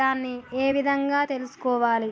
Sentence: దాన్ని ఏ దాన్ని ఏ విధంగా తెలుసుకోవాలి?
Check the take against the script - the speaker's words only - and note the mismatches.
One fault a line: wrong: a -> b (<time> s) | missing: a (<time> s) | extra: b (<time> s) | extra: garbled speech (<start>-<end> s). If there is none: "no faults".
missing: దాన్ని ఏ (0.7 s)